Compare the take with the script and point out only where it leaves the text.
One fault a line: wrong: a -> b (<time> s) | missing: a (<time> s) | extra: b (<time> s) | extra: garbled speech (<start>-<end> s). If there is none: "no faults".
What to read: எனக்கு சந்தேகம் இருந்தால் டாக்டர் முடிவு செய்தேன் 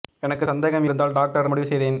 no faults